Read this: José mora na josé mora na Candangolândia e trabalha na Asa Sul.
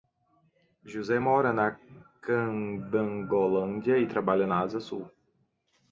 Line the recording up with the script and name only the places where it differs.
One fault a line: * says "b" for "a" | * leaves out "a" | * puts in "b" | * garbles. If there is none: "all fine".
* leaves out "josé mora na"